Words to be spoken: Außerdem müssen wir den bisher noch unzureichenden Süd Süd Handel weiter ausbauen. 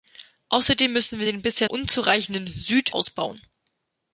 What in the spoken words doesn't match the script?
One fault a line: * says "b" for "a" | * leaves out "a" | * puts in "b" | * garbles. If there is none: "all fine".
* leaves out "noch"
* leaves out "Süd Handel weiter"